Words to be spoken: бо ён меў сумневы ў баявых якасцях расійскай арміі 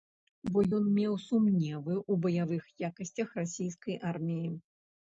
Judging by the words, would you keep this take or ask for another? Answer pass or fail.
pass